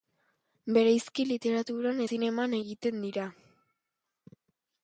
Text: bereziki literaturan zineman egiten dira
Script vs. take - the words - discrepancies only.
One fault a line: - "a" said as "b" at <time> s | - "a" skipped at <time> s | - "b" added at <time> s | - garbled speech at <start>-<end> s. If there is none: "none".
none